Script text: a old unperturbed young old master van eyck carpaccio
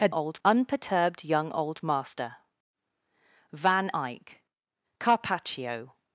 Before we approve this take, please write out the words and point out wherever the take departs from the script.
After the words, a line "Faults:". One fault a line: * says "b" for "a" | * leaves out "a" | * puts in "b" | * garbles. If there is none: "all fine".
a old unperturbed young old master van eyck carpaccio
Faults:
all fine